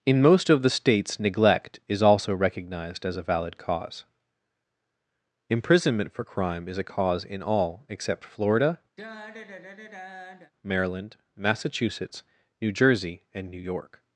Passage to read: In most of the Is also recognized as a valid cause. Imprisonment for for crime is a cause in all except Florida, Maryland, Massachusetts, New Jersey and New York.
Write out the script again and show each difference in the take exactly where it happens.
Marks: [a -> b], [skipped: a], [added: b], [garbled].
In most of the [added: States neglect] Is also recognized as a valid cause. Imprisonment for [skipped: for] crime is a cause in all except Florida, Maryland, Massachusetts, New Jersey and New York.